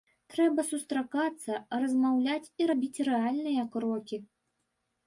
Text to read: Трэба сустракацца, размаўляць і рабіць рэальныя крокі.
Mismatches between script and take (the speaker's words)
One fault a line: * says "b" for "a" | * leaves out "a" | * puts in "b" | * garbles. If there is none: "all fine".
all fine